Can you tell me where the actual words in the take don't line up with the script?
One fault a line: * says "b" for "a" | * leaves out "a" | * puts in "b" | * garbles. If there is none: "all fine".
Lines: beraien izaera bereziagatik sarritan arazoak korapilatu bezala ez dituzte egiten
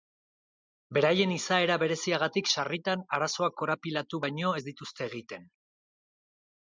* says "baino" for "bezala"